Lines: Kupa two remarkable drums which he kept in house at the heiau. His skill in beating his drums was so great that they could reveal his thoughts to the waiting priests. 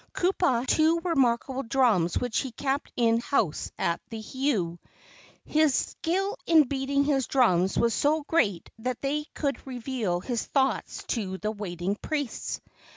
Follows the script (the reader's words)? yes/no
yes